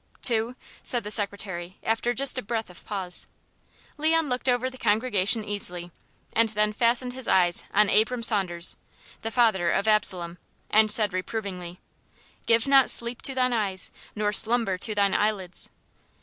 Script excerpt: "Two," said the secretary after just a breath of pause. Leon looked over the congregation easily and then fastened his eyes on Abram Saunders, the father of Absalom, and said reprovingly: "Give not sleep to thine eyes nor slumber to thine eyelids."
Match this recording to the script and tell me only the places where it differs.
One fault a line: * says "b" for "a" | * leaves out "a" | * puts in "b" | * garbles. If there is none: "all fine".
all fine